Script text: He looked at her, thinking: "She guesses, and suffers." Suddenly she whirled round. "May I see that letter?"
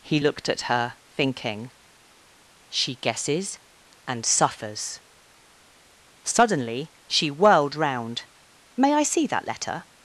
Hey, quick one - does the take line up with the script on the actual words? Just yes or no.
yes